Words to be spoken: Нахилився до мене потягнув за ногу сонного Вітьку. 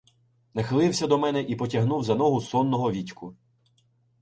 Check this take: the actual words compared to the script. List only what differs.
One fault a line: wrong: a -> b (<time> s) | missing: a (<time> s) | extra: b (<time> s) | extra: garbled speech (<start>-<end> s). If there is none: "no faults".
extra: і (1.4 s)